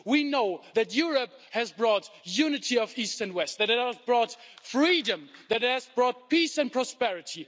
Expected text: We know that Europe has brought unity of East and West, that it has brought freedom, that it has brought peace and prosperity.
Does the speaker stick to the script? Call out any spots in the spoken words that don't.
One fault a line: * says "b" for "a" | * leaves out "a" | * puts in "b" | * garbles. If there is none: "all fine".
all fine